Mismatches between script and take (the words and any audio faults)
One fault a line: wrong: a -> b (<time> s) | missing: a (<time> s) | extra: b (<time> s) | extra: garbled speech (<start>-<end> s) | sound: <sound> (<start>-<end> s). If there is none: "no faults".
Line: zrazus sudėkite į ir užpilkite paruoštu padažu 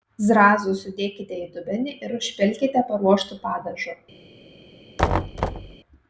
extra: dubenį (1.6 s)
sound: thud (5.0-5.8 s)